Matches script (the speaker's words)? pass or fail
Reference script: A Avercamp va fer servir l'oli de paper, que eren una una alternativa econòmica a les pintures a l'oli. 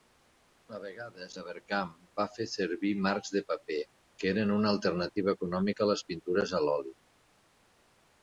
fail